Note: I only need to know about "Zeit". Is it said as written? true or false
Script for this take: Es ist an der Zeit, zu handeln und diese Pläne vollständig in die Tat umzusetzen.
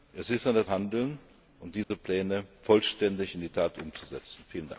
false